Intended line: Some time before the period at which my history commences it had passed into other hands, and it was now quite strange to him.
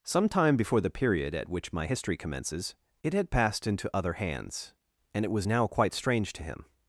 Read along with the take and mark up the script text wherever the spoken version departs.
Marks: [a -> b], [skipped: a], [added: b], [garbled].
Some time before the period at which my history commences it had passed into other hands, and it was now quite strange to him.